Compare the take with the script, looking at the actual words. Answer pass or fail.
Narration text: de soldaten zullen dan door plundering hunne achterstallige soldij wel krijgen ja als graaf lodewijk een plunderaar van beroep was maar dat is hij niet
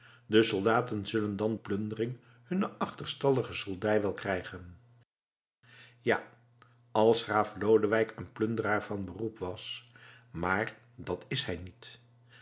fail